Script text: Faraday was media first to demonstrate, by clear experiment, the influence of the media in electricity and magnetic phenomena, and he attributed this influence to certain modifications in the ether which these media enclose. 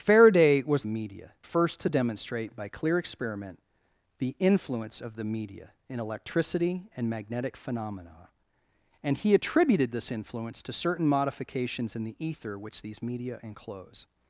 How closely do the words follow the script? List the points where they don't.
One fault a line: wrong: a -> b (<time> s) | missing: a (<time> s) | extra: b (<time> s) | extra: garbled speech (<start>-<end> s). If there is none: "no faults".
no faults